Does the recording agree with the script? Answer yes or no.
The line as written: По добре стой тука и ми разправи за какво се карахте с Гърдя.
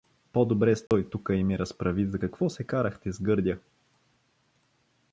yes